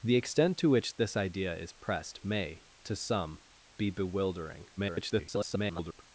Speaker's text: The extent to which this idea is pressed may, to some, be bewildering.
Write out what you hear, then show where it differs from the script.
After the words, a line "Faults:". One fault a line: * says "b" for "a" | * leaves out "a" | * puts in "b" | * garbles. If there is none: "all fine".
The extent to which this idea is pressed may, to some, be bewildering. [garbled]
Faults:
* garbles